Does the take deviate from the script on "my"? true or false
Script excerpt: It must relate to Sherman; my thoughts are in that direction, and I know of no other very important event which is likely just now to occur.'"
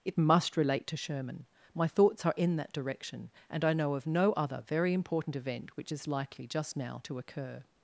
false